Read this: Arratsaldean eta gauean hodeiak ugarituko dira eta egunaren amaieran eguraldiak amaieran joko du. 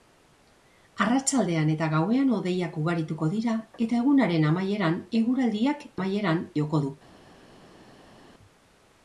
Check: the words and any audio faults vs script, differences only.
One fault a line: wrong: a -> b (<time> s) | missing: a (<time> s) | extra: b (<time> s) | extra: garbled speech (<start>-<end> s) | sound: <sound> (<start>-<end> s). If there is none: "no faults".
no faults